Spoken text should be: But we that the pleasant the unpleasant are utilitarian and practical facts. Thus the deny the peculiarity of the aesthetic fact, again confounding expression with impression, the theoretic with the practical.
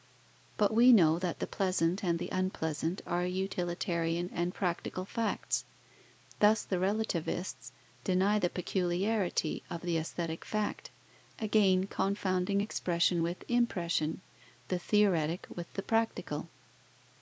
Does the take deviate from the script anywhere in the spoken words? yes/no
yes